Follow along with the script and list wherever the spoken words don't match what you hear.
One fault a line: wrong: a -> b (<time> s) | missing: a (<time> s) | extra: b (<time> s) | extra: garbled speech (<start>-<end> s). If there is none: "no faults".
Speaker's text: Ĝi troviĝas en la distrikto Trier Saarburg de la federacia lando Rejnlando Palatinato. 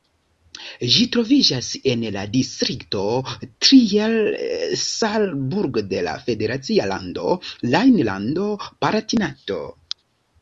no faults